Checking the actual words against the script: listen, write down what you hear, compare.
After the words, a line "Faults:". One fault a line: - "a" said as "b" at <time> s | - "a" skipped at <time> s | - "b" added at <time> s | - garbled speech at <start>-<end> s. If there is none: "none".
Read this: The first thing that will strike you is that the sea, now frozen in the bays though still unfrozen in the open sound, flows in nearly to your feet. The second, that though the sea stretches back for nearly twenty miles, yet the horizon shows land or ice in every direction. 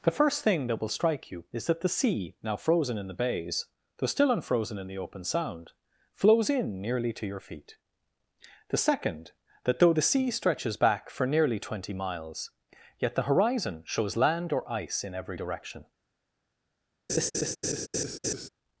The first thing that will strike you is that the sea, now frozen in the bays though still unfrozen in the open sound, flows in nearly to your feet. The second, that though the sea stretches back for nearly twenty miles, yet the horizon shows land or ice in every direction.
Faults:
none